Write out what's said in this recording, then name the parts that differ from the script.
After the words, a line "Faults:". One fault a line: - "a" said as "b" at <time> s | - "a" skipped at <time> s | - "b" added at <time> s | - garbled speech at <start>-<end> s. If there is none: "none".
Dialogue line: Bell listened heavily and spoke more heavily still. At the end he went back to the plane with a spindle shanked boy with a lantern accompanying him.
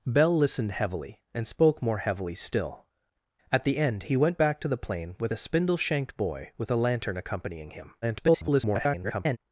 Bell listened heavily and spoke more heavily still. At the end he went back to the plane with a spindle shanked boy with a lantern accompanying him. [garbled]
Faults:
- garbled speech at 8.0-9.4 s